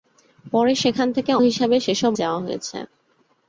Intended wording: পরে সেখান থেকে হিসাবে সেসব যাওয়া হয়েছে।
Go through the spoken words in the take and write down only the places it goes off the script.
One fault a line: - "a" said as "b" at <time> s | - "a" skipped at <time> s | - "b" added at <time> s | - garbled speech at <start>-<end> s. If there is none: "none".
none